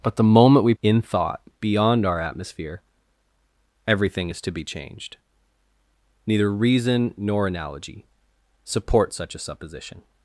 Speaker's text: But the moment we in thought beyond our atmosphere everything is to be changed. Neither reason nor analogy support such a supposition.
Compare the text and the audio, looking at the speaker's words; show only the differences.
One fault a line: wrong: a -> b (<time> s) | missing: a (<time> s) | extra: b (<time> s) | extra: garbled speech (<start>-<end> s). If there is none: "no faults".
no faults